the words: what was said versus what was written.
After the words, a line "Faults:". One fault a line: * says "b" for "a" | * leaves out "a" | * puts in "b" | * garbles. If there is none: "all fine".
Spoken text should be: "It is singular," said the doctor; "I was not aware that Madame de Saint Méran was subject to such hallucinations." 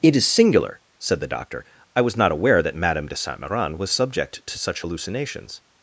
"It is singular," said the doctor; "I was not aware that Madame de Saint Méran was subject to such hallucinations."
Faults:
all fine